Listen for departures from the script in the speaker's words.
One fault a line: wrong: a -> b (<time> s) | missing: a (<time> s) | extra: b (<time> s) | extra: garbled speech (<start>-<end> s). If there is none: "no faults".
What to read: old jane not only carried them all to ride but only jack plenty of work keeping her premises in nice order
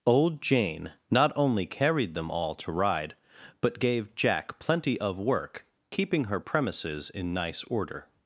wrong: only -> gave (3.8 s)